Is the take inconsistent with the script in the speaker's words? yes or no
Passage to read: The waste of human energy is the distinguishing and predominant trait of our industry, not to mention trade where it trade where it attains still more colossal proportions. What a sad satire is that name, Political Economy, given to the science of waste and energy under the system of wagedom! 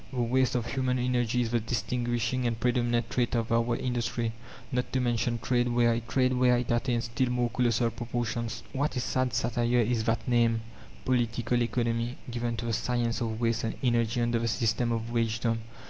no